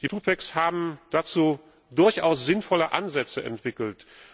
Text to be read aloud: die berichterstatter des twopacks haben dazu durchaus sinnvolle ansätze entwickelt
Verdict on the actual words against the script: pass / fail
fail